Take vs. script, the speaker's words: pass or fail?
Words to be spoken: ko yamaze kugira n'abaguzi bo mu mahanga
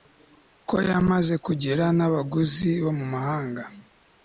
pass